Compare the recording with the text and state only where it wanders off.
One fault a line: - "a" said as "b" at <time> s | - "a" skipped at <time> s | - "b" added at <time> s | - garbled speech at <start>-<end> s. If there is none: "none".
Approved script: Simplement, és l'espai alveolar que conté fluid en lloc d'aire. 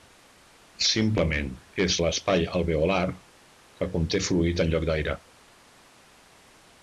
none